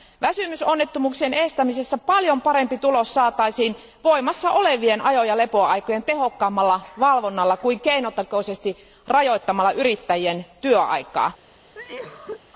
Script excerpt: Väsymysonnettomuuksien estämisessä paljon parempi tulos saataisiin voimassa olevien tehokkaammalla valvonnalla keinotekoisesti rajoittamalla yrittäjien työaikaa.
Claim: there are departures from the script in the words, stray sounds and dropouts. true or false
true